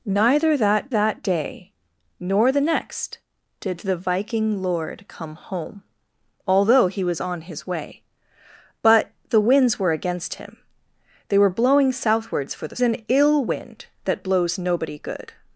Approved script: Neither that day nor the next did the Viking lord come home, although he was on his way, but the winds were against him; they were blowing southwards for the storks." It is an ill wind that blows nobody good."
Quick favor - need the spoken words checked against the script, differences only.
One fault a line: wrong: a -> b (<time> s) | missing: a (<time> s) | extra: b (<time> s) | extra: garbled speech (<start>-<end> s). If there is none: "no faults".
extra: that (0.9 s)
missing: storks It is (12.8 s)